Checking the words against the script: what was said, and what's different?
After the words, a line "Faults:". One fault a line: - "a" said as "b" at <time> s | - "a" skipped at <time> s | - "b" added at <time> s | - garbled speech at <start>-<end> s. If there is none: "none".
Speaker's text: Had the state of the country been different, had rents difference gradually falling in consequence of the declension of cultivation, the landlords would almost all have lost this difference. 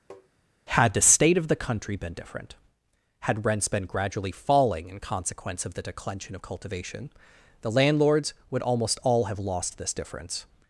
Had the state of the country been different, had rents been gradually falling in consequence of the declension of cultivation, the landlords would almost all have lost this difference.
Faults:
- "difference" said as "been" at 3.7 s